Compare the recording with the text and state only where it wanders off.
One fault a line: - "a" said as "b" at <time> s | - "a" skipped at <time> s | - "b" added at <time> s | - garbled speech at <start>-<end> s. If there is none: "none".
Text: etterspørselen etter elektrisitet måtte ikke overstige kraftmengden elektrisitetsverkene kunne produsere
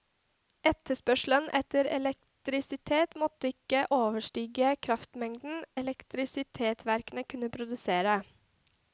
none